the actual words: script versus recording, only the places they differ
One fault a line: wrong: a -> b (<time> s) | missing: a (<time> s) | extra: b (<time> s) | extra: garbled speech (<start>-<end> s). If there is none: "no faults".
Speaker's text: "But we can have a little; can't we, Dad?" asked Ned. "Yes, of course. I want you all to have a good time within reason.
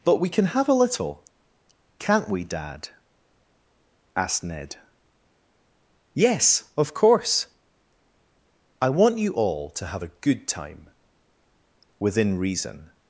no faults